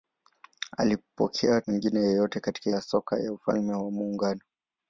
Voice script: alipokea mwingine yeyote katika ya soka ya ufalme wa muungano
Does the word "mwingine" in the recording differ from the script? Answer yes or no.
no